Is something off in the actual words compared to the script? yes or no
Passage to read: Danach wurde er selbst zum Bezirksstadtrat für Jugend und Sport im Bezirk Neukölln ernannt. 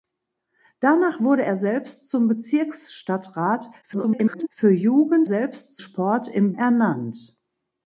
yes